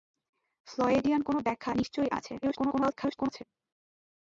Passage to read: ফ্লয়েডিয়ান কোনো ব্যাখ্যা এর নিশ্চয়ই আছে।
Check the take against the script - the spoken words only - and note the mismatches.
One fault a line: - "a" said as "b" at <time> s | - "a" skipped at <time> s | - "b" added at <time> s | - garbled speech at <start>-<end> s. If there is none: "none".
- "এর" skipped at 1.7 s
- garbled speech at 2.4-3.4 s